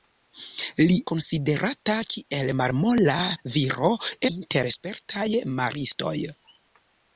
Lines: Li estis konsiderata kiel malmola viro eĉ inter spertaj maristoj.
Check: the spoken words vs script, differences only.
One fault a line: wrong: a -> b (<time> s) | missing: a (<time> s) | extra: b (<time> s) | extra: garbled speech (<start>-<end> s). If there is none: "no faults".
missing: estis (0.9 s)
missing: eĉ (3.9 s)